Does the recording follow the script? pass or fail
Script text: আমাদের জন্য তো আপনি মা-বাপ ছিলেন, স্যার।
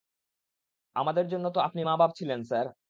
pass